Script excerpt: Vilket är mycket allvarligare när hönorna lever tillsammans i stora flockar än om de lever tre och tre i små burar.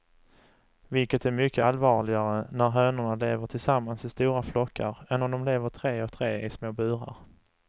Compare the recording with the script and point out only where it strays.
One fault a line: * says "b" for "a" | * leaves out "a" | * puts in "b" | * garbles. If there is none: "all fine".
all fine